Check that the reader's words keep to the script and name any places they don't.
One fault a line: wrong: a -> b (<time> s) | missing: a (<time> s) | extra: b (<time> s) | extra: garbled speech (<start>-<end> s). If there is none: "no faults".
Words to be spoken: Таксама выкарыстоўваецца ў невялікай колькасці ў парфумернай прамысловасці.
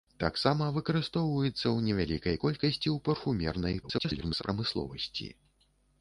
extra: garbled speech (3.8-4.4 s)